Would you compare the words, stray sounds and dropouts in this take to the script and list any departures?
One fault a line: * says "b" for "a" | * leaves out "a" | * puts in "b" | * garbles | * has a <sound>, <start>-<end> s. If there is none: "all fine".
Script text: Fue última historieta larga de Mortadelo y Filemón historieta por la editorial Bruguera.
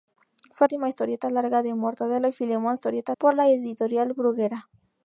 all fine